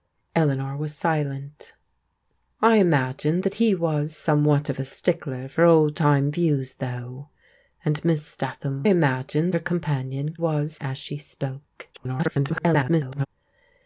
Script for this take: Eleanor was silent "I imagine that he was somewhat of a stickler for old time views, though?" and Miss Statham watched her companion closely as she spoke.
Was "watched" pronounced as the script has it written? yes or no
no